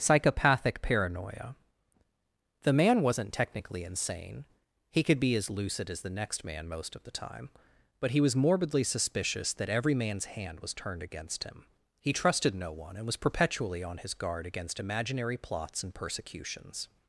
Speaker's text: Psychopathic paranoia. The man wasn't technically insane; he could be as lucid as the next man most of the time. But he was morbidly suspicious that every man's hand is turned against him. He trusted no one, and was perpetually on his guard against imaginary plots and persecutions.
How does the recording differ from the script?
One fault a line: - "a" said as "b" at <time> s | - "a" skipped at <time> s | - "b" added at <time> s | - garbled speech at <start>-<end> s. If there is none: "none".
- "is" said as "was" at 10.6 s